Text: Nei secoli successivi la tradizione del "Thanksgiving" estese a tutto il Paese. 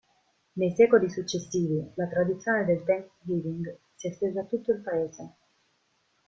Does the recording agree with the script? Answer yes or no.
no